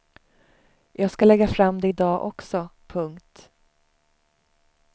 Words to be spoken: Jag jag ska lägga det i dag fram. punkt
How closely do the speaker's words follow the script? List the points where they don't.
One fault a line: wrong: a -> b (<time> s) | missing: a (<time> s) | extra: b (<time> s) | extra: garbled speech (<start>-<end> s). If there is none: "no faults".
missing: jag (1.1 s)
extra: fram (1.5 s)
wrong: fram -> också (2.2 s)